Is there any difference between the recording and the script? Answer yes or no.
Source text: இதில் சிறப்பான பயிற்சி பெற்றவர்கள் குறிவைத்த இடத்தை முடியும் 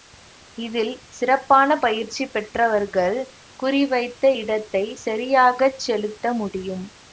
yes